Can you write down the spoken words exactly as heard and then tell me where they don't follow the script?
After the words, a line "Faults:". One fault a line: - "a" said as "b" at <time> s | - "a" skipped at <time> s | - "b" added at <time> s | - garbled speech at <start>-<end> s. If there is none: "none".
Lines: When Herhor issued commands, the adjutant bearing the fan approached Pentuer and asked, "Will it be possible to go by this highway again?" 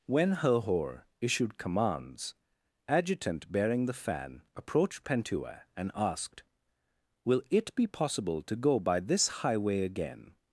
When Herhor issued commands, adjutant bearing the fan approached Pentuer and asked, "Will it be possible to go by this highway again?"
Faults:
- "the" skipped at 2.3 s